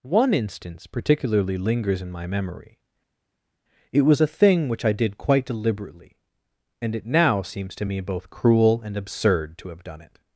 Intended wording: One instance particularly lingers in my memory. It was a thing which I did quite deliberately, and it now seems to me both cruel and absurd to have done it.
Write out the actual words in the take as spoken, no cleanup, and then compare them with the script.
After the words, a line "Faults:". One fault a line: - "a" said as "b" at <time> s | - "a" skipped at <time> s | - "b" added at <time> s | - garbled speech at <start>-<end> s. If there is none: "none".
One instance particularly lingers in my memory. It was a thing which I did quite deliberately, and it now seems to me both cruel and absurd to have done it.
Faults:
none